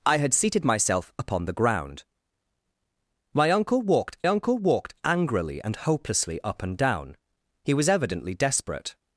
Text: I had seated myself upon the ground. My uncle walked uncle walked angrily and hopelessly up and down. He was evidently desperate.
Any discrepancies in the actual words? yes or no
no